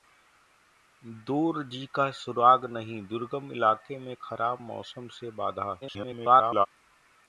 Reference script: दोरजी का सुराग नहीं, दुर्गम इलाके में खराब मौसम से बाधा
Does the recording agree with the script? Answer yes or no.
no